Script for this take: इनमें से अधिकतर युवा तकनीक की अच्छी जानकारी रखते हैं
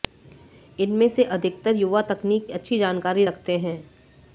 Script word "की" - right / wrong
wrong